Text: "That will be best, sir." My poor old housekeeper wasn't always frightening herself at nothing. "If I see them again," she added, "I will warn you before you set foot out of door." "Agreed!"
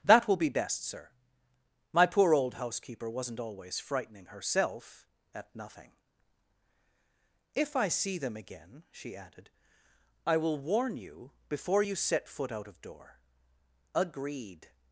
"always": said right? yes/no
yes